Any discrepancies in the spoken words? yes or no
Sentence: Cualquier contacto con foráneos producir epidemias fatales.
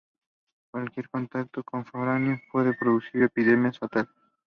yes